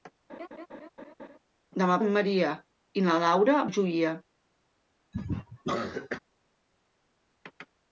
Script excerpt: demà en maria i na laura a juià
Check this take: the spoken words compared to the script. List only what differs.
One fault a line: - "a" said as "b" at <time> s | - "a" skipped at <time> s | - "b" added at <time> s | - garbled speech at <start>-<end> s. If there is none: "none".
none